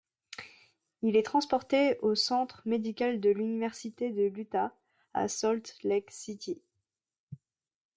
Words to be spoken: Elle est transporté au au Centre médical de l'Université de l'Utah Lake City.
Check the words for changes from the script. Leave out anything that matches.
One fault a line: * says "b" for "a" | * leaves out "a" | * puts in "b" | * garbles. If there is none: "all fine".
* says "Il" for "Elle"
* leaves out "au"
* puts in "à Salt"